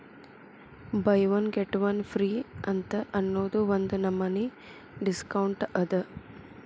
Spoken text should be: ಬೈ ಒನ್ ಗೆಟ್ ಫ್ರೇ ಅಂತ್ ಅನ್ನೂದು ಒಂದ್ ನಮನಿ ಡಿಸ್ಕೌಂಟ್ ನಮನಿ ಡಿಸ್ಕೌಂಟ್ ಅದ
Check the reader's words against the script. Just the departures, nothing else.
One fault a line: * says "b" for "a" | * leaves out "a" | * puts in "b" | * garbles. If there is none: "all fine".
* puts in "ಒನ್"
* leaves out "ನಮನಿ ಡಿಸ್ಕೌಂಟ್"